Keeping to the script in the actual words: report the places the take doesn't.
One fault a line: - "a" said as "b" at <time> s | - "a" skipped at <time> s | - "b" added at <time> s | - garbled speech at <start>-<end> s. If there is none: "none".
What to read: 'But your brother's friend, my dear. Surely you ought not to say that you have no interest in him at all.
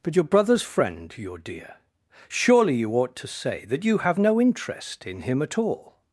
- "my" said as "your" at 1.2 s
- "not" skipped at 3.1 s